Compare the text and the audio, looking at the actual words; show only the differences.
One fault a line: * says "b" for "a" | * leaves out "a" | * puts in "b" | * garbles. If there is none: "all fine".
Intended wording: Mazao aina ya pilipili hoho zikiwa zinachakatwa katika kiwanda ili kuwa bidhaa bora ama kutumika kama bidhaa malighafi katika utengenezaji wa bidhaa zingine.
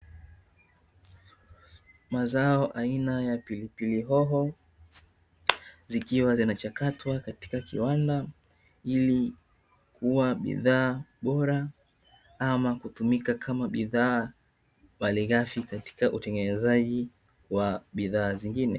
all fine